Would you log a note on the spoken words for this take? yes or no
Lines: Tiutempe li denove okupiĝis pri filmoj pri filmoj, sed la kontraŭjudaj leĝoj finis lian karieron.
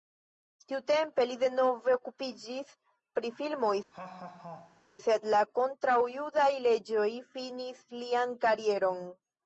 yes